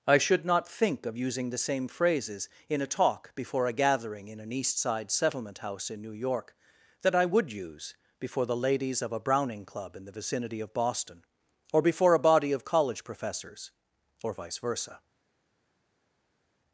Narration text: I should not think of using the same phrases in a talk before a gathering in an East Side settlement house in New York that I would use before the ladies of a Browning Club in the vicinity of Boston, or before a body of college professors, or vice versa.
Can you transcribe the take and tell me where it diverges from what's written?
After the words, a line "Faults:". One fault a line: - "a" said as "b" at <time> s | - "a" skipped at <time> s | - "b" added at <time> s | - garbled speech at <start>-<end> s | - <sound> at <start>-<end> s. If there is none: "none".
I should not think of using the same phrases in a talk before a gathering in an East Side settlement house in New York that I would use before the ladies of a Browning Club in the vicinity of Boston, or before a body of college professors, or vice versa.
Faults:
none